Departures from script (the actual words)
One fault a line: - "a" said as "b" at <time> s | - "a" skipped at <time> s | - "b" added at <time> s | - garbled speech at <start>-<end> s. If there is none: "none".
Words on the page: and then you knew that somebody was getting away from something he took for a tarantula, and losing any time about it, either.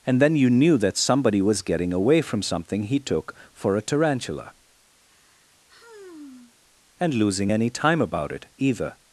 none